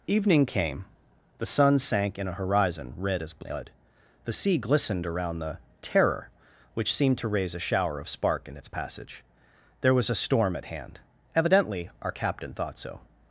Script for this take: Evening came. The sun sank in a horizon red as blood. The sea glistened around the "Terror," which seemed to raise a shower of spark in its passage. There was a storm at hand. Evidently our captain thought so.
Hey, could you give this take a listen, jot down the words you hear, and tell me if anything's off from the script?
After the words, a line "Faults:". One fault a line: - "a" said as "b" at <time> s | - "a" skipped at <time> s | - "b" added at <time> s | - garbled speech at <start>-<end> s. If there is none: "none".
Evening came. The sun sank in a horizon red as blood. The sea glistened around the "Terror," which seemed to raise a shower of spark in its passage. There was a storm at hand. Evidently our captain thought so.
Faults:
none